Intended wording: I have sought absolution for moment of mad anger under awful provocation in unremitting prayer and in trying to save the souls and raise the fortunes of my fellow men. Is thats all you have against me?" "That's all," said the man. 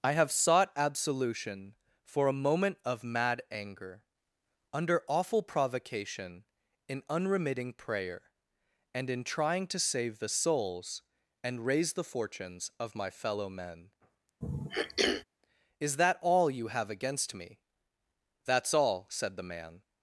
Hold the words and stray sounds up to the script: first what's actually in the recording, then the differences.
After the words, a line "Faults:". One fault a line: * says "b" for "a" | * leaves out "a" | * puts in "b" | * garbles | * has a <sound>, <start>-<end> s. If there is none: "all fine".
I have sought absolution for a moment of mad anger under awful provocation in unremitting prayer and in trying to save the souls and raise the fortunes of my fellow men. Is that all you have against me?" "That's all," said the man.
Faults:
* puts in "a"
* has a throat clearing, 14.4-15.2 s
* says "that" for "thats"